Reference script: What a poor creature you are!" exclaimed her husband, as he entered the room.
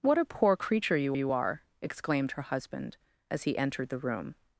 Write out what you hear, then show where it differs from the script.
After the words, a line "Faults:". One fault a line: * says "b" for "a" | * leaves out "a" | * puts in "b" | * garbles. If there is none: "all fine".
What a poor creature you you are!" exclaimed her husband, as he entered the room.
Faults:
* puts in "you"